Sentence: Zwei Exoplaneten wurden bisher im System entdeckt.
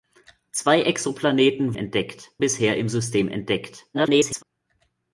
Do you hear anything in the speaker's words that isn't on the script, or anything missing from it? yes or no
yes